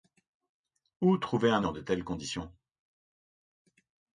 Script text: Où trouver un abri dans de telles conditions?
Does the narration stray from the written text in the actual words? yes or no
yes